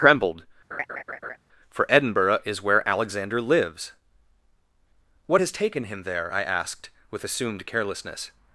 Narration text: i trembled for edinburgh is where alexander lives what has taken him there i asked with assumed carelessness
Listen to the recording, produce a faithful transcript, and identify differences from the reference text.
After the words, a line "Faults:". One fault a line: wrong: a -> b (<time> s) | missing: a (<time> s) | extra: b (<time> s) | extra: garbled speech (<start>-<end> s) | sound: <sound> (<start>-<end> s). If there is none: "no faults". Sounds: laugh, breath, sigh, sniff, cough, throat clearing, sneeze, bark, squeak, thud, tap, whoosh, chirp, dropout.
trembled for edinburgh is where alexander lives what has taken him there i asked with assumed carelessness
Faults:
missing: i (0.0 s)
sound: laugh (0.7-1.4 s)